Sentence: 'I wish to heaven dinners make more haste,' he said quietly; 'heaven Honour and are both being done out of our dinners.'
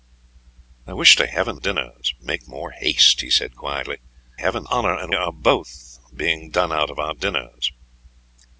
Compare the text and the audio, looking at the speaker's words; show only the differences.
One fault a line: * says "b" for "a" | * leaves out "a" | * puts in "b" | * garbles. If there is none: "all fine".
all fine